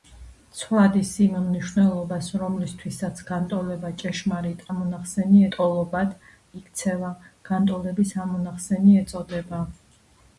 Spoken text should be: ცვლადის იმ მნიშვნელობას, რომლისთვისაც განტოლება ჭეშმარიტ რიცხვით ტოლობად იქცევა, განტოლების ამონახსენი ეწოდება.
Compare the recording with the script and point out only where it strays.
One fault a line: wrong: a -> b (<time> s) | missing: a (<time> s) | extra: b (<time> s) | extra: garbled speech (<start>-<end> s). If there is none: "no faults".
wrong: რიცხვით -> ამონახსენი (4.7 s)